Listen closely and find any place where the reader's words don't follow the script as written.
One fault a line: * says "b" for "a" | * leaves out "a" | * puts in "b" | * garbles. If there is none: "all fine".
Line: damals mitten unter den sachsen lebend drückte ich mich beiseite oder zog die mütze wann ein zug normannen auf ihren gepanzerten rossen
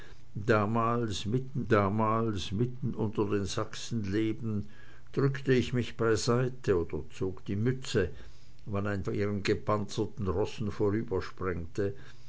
* puts in "damals mitten"
* leaves out "zug normannen auf"